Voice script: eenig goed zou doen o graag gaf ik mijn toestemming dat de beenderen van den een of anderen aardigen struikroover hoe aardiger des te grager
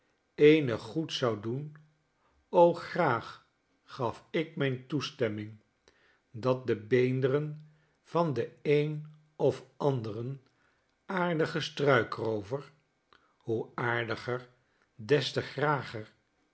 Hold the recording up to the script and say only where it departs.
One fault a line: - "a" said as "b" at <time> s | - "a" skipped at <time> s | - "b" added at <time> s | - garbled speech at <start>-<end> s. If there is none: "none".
none